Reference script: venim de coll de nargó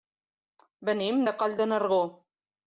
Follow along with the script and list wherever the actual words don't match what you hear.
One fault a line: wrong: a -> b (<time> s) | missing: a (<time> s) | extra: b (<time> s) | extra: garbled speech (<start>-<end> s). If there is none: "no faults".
no faults